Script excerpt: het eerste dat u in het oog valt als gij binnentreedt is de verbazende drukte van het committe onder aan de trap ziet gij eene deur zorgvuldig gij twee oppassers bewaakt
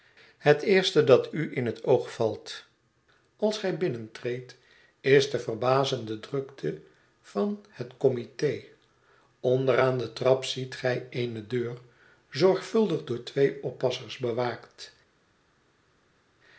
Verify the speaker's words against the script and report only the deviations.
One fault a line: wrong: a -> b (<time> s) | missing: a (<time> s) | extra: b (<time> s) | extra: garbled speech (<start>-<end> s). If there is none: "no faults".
wrong: gij -> door (13.0 s)